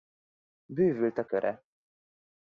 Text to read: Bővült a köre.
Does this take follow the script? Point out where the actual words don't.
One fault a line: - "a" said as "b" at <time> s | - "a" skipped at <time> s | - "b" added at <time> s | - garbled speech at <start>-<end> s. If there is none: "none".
none